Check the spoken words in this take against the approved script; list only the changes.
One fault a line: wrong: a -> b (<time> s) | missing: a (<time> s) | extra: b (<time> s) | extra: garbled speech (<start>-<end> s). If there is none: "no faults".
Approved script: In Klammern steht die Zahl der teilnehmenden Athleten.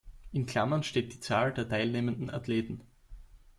no faults